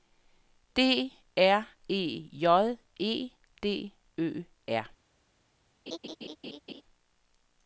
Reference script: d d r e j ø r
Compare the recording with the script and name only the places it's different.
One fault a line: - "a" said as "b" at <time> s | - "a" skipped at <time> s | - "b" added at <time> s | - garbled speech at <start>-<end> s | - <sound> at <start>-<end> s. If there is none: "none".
- "d" skipped at 1.1 s
- "e d" added at 3.0 s
- laugh at 5.9-6.8 s